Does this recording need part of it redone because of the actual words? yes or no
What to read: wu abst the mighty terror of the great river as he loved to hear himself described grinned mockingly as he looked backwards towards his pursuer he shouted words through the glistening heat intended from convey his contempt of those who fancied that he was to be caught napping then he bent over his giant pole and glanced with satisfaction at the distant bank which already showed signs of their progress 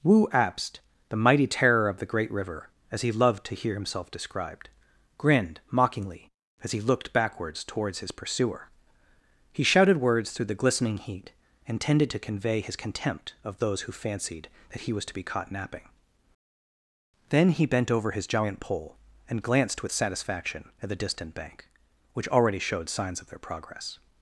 yes